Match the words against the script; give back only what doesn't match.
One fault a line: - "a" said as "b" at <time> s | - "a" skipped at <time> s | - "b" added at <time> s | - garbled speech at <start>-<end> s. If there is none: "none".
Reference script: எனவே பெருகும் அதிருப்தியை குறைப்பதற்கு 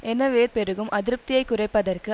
none